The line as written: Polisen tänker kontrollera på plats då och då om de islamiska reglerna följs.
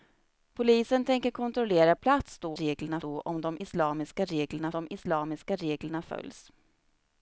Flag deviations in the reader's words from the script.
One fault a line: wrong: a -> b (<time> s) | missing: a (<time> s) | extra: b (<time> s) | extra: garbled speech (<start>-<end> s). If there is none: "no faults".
missing: på (1.9 s)
wrong: och -> reglerna (2.5 s)
extra: de islamiska reglerna (4.7 s)